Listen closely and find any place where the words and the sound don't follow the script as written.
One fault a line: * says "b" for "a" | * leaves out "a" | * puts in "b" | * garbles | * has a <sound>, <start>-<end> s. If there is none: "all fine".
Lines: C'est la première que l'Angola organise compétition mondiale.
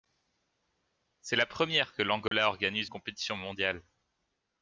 * has a dropout, 2.3-2.3 s